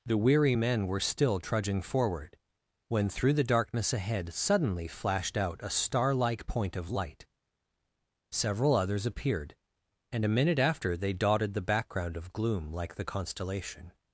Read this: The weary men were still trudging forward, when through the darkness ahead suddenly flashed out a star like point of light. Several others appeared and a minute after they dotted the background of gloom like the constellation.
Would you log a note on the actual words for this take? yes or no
no